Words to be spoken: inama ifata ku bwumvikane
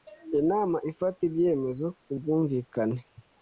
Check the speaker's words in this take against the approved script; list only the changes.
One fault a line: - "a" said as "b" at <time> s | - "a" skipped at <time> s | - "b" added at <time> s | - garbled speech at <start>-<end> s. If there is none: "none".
- "ibyemezo" added at 1.3 s